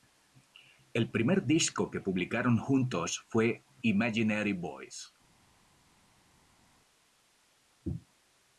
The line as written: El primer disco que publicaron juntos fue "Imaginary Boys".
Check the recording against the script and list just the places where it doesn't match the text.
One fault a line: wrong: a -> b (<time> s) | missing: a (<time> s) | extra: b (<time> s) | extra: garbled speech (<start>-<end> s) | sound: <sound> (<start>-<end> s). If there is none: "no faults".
no faults